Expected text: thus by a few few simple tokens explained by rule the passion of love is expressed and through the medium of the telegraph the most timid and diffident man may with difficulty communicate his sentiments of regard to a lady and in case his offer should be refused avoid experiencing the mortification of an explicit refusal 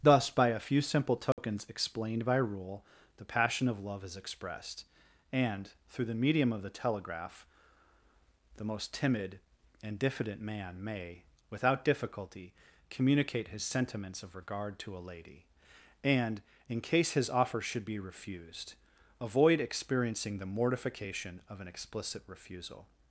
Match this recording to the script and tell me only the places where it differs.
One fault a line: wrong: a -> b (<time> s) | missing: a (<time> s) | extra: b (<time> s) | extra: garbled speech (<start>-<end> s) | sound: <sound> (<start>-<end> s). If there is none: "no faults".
missing: few (0.8 s)
sound: dropout (1.3-1.4 s)
wrong: with -> without (11.5 s)